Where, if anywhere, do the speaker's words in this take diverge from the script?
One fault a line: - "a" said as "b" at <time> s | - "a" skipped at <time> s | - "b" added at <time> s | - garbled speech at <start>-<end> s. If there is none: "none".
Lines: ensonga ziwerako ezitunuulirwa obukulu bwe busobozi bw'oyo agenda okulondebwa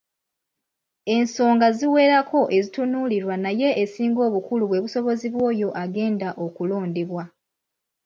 - "naye esinga" added at 3.4 s